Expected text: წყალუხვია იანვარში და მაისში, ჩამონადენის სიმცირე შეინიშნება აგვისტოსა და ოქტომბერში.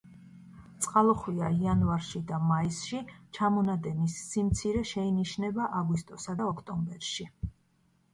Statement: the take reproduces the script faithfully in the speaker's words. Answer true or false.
true